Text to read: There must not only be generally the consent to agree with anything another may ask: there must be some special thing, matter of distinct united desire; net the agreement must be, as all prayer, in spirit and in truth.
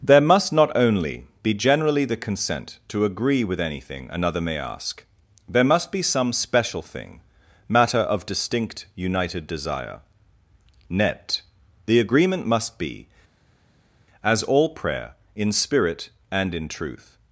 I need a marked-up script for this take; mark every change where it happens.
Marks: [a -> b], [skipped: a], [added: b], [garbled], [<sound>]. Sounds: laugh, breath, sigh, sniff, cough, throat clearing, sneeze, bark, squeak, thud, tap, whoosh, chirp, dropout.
There must not only be generally the consent to agree with anything another may ask: there must be some special thing, matter of distinct united desire; net the agreement must be, as all prayer, in spirit and in truth.